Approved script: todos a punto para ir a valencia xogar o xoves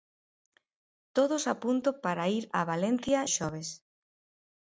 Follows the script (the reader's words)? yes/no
no